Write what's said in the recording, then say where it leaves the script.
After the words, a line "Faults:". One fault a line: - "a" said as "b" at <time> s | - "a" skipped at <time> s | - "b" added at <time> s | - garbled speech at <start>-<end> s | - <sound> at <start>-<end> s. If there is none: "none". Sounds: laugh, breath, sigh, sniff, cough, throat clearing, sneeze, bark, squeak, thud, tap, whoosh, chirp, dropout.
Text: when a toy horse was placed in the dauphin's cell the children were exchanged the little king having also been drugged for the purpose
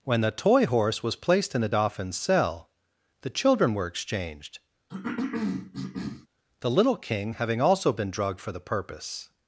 when the toy horse was placed in the dauphin's cell the children were exchanged the little king having also been drugged for the purpose
Faults:
- "a" said as "the" at 0.2 s
- cough at 4.9-6.3 s